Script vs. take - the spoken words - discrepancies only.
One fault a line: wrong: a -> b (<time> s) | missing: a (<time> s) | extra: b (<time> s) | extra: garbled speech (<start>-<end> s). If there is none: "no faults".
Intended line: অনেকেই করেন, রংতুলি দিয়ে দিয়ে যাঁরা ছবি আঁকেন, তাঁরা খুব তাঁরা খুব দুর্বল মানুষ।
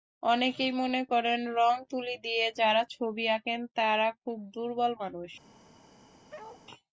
extra: মনে (0.7 s)
missing: দিয়ে (2.5 s)
missing: তাঁরা খুব (4.4 s)